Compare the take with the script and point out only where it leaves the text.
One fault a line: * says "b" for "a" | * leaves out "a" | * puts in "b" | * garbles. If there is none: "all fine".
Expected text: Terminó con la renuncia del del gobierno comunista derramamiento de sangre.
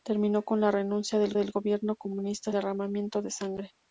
all fine